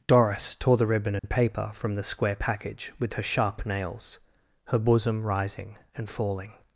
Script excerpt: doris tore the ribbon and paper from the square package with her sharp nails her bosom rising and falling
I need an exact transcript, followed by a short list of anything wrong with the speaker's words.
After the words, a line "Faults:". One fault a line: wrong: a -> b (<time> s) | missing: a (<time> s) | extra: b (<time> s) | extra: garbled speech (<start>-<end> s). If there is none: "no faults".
doris tore the ribbon and paper from the square package with her sharp nails her bosom rising and falling
Faults:
no faults